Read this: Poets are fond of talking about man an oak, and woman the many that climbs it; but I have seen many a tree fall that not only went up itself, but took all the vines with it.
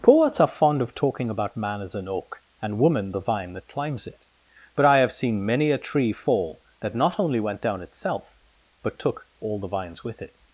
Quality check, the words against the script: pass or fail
fail